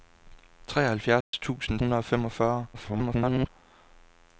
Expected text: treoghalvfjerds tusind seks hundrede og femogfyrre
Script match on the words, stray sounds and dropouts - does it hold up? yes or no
no